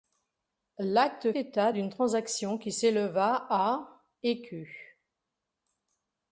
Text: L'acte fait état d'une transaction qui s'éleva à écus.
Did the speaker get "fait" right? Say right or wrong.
wrong